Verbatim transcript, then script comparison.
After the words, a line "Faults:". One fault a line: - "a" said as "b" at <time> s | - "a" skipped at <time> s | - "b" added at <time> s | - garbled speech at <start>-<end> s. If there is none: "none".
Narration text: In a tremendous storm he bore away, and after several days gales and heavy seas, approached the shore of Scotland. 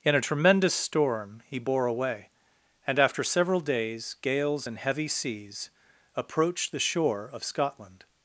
In a tremendous storm he bore away, and after several days gales and heavy seas, approached the shore of Scotland.
Faults:
none